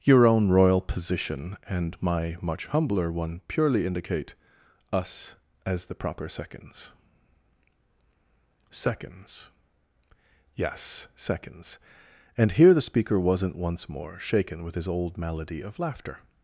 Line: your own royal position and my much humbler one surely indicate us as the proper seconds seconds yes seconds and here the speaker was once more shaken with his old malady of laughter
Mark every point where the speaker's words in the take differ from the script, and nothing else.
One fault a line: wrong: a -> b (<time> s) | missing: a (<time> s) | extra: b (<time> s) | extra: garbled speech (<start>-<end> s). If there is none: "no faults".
wrong: surely -> purely (3.5 s)
wrong: was -> wasn't (13.2 s)